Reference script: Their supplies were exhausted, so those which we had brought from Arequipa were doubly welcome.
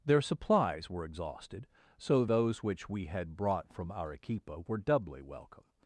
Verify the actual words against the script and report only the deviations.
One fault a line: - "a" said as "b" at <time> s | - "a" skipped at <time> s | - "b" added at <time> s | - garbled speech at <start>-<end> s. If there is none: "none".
none